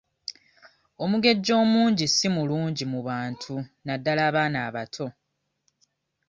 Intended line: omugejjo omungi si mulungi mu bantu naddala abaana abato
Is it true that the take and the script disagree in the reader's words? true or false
false